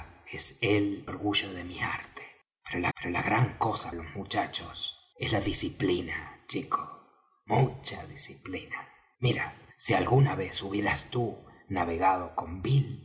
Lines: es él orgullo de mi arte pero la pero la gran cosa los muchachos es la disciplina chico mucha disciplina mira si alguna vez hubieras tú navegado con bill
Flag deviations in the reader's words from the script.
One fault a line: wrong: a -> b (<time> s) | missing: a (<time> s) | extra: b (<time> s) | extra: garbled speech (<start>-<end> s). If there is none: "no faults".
no faults